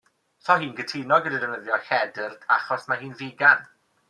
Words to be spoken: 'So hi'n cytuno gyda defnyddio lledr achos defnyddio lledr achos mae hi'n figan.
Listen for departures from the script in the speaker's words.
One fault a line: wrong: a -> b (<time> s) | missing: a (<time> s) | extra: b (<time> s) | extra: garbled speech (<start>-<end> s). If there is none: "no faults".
missing: defnyddio lledr achos (2.9 s)